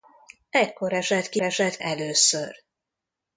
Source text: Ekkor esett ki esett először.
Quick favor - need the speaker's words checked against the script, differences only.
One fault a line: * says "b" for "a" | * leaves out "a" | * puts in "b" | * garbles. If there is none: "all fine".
all fine